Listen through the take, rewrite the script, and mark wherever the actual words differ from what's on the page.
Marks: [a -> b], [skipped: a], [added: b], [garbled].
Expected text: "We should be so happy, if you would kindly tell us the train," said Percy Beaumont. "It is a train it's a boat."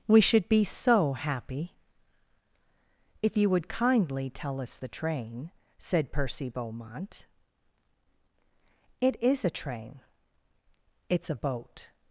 "We should be so happy, if you would kindly tell us the train," said Percy Beaumont. "It is a train it's a boat."